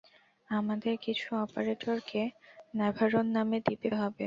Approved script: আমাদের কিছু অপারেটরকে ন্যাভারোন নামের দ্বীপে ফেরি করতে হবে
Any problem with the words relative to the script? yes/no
yes